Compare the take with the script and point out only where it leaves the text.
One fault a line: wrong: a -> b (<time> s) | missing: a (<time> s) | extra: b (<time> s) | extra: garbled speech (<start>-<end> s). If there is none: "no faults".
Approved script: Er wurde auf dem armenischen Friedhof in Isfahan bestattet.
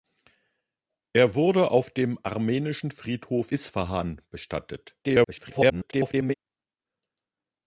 missing: in (3.5 s)
extra: garbled speech (5.0-6.3 s)